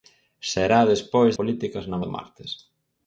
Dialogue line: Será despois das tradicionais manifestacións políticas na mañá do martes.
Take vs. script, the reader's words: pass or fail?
fail